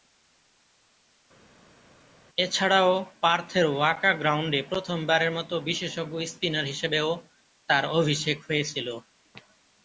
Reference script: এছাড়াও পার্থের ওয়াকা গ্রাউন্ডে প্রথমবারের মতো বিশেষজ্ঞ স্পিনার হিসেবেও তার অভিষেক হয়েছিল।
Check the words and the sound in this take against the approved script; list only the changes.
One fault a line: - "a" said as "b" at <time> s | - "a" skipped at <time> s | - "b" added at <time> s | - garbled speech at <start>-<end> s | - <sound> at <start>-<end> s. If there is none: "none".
none